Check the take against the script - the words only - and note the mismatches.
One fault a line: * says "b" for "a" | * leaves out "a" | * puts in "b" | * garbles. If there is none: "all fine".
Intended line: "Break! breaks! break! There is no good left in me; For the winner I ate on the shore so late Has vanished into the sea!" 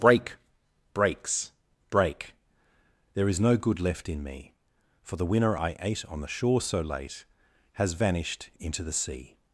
all fine